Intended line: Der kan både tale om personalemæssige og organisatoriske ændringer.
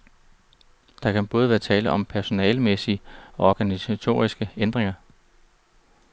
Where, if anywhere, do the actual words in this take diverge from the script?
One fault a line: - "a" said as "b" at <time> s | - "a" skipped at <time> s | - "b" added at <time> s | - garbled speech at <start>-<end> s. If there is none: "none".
- "være" added at 1.5 s